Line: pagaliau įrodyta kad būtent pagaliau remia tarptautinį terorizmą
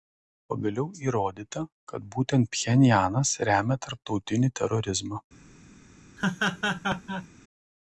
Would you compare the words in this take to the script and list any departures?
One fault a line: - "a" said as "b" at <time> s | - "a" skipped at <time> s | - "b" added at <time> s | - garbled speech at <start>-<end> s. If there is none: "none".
- "pagaliau" said as "pchenjanas" at 2.6 s